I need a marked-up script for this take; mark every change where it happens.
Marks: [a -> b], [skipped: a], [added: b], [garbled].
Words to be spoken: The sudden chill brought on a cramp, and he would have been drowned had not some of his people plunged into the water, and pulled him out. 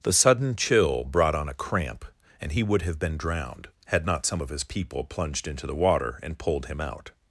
The sudden chill brought on a cramp, and he would have been drowned had not some of his people plunged into the water, and pulled him out.